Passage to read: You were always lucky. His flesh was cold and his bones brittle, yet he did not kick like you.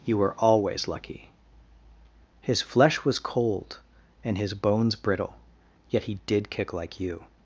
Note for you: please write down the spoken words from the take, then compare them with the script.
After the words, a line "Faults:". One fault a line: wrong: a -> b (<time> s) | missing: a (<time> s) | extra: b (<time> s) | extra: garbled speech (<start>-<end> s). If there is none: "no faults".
You were always lucky. His flesh was cold and his bones brittle, yet he did kick like you.
Faults:
missing: not (6.5 s)